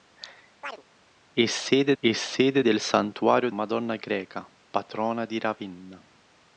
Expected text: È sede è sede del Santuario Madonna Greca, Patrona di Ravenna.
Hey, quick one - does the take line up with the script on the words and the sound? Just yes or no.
no